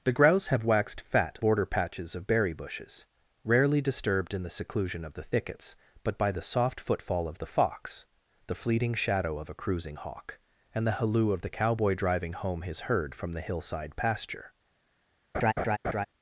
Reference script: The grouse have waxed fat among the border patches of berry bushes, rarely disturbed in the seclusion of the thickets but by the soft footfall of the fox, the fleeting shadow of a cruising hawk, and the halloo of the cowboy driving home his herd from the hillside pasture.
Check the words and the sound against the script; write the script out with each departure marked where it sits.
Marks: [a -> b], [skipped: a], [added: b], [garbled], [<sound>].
The grouse have waxed fat [skipped: among the] border patches of berry bushes, rarely disturbed in the seclusion of the thickets but by the soft footfall of the fox, the fleeting shadow of a cruising hawk, and the halloo of the cowboy driving home his herd from the hillside pasture. [laugh]